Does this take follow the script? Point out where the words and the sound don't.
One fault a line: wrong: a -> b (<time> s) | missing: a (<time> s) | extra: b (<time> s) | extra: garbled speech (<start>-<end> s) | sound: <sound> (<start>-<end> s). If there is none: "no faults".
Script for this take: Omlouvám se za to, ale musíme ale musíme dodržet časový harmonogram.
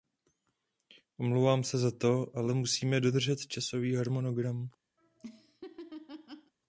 missing: ale musíme (3.0 s)
sound: laugh (5.0-6.5 s)